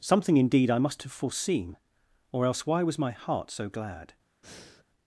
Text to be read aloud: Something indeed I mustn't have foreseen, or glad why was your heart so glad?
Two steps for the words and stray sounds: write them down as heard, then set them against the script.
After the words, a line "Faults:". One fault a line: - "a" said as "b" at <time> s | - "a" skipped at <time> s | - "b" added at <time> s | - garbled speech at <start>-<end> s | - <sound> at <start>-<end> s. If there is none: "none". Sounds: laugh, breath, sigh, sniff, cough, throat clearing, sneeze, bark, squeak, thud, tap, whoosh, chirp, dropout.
Something indeed I must have foreseen, or else why was my heart so glad?
Faults:
- "mustn't" said as "must" at 0.8 s
- "glad" said as "else" at 2.5 s
- "your" said as "my" at 3.0 s
- breath at 4.4-4.8 s